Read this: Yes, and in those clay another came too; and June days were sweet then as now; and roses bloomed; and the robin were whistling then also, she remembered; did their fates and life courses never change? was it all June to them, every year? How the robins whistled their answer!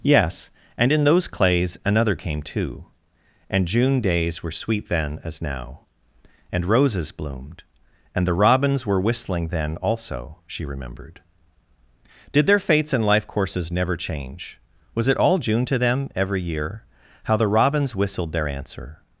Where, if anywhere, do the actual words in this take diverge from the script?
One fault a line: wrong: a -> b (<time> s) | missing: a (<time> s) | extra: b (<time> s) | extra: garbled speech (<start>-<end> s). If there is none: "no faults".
wrong: clay -> clays (1.3 s)
wrong: robin -> robins (8.3 s)